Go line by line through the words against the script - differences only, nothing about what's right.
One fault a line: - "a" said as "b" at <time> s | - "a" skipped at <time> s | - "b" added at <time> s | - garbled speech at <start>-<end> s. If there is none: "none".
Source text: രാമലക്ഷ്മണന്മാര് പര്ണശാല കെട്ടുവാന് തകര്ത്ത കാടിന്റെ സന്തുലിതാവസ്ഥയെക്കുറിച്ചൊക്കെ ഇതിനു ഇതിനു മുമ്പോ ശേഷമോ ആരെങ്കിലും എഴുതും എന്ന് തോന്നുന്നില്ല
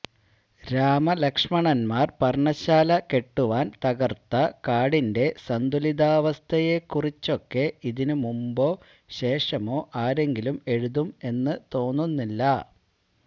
- "ഇതിനു" skipped at 8.2 s